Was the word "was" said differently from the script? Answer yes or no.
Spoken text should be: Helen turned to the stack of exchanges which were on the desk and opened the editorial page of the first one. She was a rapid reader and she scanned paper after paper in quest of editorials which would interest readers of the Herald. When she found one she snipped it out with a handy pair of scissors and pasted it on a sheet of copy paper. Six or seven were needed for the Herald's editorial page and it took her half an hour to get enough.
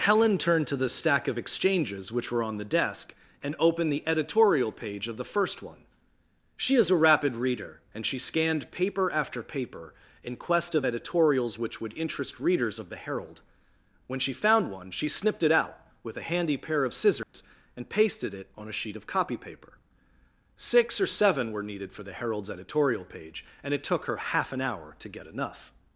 yes